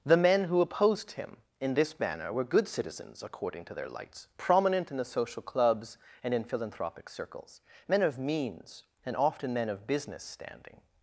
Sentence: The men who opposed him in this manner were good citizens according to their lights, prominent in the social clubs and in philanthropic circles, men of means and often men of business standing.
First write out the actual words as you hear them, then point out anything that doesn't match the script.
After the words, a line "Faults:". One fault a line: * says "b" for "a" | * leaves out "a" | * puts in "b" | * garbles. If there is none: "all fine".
The men who opposed him in this manner were good citizens according to their lights, prominent in the social clubs and in philanthropic circles, men of means and often men of business standing.
Faults:
all fine